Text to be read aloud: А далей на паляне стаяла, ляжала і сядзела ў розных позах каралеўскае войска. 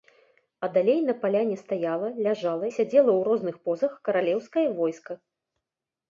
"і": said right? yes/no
no